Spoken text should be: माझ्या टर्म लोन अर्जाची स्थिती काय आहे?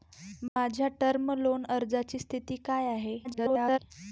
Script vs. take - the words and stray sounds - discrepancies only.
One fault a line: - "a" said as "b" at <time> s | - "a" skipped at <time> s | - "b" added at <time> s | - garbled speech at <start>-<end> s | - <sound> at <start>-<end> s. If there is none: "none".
- dropout at 0.5-0.6 s
- garbled speech at 3.2-3.8 s